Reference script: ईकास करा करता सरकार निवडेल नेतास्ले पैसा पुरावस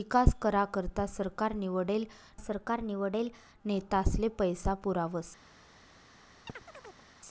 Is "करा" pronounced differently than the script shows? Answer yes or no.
no